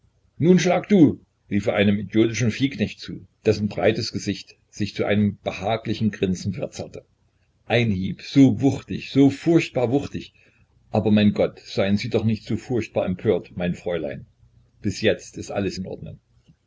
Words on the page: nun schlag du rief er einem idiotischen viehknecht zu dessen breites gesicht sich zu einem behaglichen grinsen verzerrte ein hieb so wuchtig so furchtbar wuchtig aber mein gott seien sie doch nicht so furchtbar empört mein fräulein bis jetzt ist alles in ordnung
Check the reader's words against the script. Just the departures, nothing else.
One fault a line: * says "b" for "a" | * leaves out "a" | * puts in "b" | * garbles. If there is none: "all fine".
all fine